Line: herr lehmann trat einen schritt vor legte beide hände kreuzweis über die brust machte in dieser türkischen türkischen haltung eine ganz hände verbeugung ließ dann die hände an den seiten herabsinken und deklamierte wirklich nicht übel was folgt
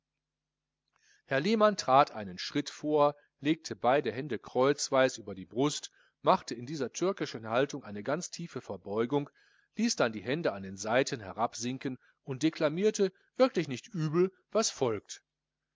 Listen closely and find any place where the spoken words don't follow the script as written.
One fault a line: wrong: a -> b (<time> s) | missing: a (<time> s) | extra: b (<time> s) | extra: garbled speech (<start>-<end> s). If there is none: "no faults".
missing: türkischen (7.5 s)
wrong: hände -> tiefe (8.3 s)